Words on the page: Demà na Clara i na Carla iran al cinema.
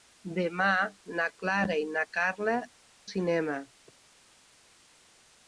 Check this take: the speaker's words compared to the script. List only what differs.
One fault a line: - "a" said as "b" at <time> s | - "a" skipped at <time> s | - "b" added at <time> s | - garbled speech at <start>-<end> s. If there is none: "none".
- "iran al" skipped at 2.5 s